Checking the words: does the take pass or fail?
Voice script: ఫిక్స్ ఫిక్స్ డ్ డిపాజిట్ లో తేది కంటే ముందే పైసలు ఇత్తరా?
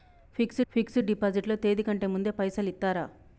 pass